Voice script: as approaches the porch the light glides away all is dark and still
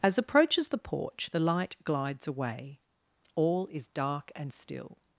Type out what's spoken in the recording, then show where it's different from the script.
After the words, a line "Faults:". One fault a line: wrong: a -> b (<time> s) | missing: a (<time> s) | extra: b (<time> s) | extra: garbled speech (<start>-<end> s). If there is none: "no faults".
as approaches the porch the light glides away all is dark and still
Faults:
no faults